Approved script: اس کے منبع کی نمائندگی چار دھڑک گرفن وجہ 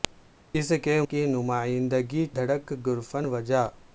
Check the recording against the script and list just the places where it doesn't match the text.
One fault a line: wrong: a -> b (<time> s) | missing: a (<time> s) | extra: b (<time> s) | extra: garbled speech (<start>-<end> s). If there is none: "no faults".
missing: منبع (1.0 s)
missing: چار (2.3 s)